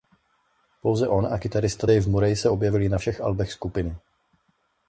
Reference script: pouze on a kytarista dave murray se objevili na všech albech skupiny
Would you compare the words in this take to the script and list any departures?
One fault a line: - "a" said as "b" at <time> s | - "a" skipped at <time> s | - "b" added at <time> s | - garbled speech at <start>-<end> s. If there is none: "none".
none